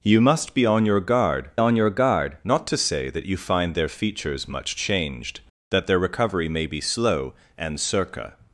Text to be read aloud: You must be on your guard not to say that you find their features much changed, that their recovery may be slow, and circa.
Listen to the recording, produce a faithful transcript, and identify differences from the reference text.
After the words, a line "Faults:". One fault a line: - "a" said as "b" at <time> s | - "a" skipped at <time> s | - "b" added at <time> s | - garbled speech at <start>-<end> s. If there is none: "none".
You must be on your guard on your guard not to say that you find their features much changed, that their recovery may be slow, and circa.
Faults:
- "on your guard" added at 1.6 s